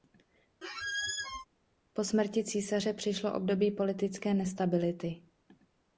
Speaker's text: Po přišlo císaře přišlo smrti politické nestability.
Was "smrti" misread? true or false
true